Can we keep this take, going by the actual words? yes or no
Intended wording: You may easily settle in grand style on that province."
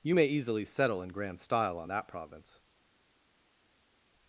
yes